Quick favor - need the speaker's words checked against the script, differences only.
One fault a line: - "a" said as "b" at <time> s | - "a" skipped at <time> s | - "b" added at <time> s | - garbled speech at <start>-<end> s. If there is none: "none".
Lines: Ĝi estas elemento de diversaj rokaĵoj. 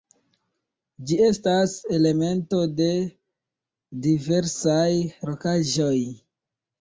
none